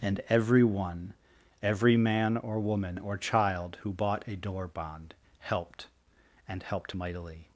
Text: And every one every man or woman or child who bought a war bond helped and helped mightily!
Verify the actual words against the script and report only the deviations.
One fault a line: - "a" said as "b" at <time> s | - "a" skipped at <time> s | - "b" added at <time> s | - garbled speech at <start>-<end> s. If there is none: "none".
- "war" said as "door" at 4.4 s